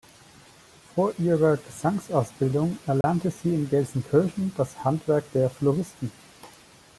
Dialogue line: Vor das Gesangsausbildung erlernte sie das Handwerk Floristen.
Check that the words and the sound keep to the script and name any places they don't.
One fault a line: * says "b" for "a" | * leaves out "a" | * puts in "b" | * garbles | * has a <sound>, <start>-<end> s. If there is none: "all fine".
* says "ihrer" for "das"
* has a dropout, 3.0-3.0 s
* puts in "in Gelsenkirchen"
* puts in "der"